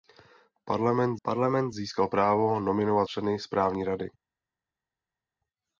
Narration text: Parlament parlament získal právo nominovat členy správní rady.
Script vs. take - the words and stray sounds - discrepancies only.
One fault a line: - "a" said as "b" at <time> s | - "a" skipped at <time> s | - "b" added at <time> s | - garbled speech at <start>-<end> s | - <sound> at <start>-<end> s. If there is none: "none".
none